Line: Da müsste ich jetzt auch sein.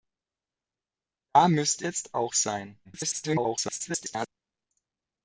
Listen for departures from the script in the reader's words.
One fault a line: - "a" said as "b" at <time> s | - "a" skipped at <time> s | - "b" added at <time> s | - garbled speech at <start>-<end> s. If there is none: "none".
- "ich" skipped at 1.9 s
- garbled speech at 2.8-4.3 s